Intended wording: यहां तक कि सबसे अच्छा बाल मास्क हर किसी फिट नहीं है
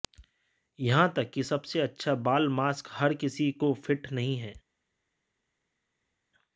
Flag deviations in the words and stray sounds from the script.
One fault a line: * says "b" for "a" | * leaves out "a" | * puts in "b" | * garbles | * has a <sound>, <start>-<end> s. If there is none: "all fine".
* puts in "को"